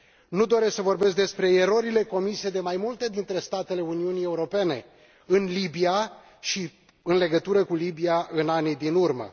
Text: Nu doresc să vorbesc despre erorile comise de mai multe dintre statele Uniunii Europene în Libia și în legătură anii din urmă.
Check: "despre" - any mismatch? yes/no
no